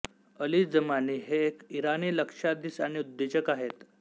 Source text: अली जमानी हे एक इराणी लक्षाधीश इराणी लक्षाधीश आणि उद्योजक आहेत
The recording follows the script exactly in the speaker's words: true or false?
false